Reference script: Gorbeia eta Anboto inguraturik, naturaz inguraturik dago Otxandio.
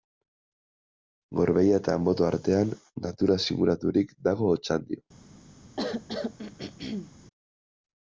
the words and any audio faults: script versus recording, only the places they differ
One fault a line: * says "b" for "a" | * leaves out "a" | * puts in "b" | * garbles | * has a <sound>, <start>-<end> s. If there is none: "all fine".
* says "artean" for "inguraturik"
* has a throat clearing, 5.8-7.1 s